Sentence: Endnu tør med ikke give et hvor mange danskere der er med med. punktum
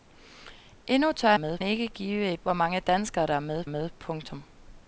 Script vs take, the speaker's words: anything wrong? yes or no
no